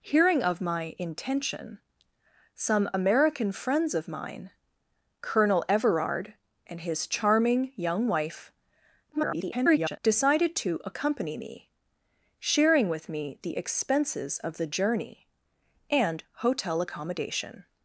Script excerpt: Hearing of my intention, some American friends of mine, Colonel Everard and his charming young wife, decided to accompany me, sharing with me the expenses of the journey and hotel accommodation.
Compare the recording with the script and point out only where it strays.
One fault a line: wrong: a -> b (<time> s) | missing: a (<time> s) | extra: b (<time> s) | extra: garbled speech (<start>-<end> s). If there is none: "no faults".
extra: garbled speech (9.1-10.0 s)